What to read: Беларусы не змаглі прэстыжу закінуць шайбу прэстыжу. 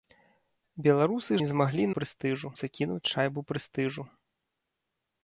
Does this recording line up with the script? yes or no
yes